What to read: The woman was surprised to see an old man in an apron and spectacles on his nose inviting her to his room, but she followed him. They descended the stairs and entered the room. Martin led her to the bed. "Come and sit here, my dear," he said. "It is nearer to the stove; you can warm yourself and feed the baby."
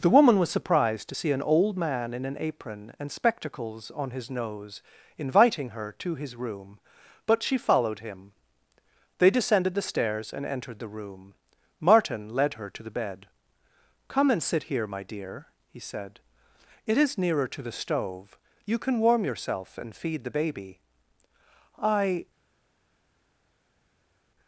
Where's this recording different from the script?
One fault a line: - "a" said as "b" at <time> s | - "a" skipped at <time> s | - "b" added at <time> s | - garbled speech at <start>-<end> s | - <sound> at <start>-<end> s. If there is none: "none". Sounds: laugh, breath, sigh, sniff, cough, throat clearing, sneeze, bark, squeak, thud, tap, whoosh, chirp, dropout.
- "I" added at 21.8 s